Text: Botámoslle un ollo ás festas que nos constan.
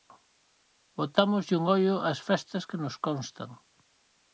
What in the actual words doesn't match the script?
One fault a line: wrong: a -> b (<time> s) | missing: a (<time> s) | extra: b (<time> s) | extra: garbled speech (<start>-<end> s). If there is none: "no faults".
no faults